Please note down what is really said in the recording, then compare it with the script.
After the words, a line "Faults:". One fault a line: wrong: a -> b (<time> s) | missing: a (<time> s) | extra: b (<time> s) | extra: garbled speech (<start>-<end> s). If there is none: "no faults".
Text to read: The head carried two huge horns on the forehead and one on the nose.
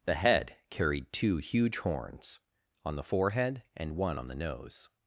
The head carried two huge horns on the forehead and one on the nose.
Faults:
no faults